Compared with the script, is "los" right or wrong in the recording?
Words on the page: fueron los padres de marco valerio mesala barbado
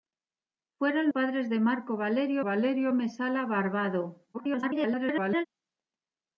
wrong